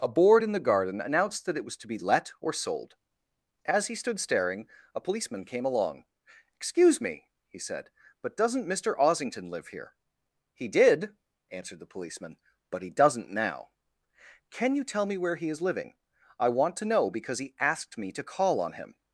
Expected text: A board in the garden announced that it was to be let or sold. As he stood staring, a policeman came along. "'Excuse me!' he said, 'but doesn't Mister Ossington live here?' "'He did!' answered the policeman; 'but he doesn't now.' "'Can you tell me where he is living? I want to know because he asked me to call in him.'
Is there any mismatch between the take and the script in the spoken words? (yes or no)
yes